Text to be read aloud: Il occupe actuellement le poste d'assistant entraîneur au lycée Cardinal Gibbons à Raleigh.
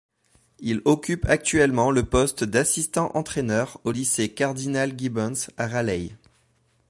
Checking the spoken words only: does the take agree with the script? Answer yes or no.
yes